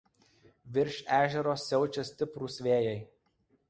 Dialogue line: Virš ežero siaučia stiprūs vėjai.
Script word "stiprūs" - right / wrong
right